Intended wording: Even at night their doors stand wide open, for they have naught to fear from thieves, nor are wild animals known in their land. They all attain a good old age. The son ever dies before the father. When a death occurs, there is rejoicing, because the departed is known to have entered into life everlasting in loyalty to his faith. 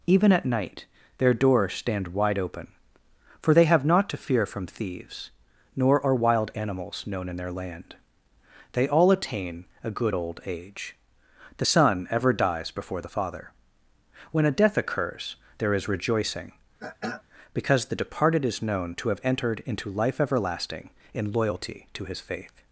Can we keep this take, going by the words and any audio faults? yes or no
no